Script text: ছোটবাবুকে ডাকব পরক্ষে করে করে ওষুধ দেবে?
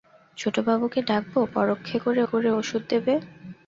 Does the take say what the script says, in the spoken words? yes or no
yes